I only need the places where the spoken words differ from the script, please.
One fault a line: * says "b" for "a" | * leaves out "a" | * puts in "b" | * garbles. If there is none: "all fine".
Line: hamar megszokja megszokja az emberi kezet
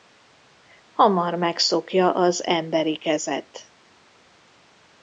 * leaves out "megszokja"